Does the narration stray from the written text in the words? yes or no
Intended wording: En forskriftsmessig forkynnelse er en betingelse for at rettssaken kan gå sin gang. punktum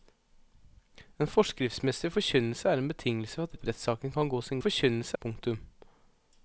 yes